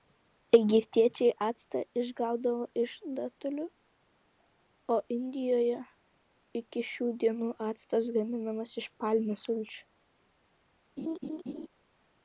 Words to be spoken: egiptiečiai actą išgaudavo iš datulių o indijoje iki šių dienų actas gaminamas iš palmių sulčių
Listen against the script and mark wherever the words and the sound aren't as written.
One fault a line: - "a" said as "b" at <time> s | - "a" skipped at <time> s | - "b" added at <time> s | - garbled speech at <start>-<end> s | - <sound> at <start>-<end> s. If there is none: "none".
- laugh at 11.0-11.7 s